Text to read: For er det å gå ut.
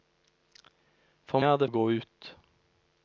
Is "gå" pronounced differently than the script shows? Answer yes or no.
no